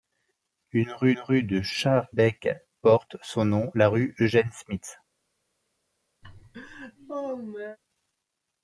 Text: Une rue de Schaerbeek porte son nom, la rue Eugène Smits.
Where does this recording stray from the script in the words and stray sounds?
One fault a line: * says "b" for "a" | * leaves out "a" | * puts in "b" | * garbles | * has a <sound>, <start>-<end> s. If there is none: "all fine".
* puts in "rue"
* has a laugh, 6.2-7.8 s